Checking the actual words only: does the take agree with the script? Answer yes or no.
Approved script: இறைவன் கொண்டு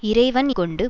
yes